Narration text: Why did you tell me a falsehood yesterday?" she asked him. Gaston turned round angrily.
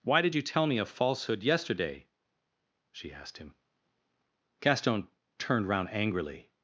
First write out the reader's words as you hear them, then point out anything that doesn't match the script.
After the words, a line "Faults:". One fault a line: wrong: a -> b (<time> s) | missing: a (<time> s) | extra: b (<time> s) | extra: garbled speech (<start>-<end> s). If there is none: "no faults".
Why did you tell me a falsehood yesterday?" she asked him. Gaston turned round angrily.
Faults:
no faults